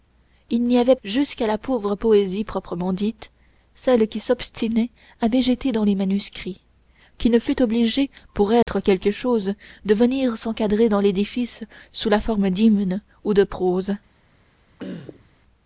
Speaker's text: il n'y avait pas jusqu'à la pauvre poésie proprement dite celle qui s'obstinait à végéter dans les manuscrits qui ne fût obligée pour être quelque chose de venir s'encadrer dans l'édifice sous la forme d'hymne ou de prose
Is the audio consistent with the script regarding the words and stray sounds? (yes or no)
no